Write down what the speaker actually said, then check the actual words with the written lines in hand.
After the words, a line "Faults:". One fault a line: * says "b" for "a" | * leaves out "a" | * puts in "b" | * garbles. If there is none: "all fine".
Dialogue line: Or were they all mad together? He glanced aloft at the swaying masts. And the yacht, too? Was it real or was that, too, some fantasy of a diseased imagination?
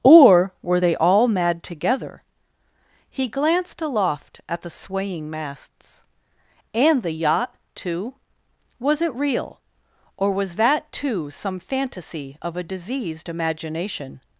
Or were they all mad together? He glanced aloft at the swaying masts. And the yacht, too? Was it real or was that, too, some fantasy of a diseased imagination?
Faults:
all fine